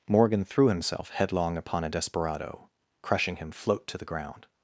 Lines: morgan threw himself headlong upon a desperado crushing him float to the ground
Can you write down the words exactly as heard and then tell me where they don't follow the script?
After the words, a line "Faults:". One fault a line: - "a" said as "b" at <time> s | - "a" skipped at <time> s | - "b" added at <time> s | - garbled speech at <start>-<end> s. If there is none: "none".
morgan threw himself headlong upon a desperado crushing him float to the ground
Faults:
none